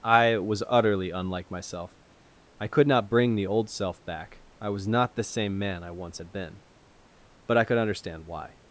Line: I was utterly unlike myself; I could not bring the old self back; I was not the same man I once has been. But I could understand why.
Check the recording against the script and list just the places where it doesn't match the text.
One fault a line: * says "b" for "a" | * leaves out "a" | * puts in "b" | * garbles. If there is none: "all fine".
* says "had" for "has"